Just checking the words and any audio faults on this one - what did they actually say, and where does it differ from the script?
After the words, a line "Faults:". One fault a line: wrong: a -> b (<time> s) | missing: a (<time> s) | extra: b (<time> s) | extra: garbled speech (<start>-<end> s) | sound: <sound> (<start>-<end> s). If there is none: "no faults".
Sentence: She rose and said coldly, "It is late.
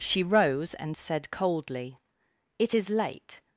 She rose and said coldly, "It is late.
Faults:
no faults